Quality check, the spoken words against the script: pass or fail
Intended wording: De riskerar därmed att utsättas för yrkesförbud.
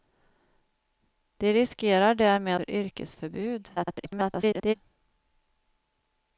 fail